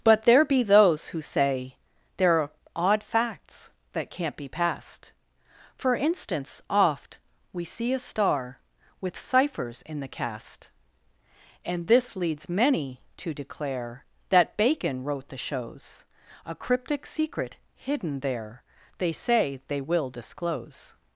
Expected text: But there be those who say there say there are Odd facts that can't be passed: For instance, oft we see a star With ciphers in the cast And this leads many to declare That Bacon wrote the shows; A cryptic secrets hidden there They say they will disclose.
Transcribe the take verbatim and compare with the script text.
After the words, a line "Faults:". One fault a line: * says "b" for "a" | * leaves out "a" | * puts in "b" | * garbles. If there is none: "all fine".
But there be those who say there are Odd facts that can't be passed: For instance, oft we see a star With ciphers in the cast And this leads many to declare That Bacon wrote the shows; A cryptic secret hidden there They say they will disclose.
Faults:
* leaves out "say there"
* says "secret" for "secrets"